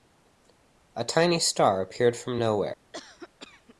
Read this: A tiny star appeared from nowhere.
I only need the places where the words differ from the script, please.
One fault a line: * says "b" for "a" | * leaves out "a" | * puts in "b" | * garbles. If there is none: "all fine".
all fine